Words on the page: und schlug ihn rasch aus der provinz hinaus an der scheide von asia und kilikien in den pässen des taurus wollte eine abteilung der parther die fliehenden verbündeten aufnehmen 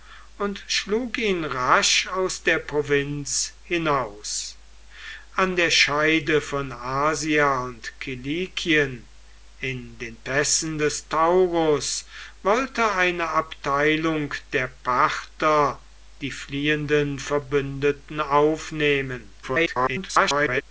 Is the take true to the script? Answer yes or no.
no